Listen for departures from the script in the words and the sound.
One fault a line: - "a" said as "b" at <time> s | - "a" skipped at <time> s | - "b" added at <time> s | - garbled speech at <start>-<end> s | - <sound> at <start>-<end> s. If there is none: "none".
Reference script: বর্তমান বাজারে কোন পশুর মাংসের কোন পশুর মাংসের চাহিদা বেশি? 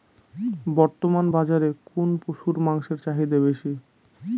- "কোন পশুর মাংসের" skipped at 3.0 s